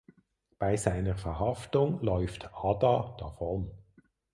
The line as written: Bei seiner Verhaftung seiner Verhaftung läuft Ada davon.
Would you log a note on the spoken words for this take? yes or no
yes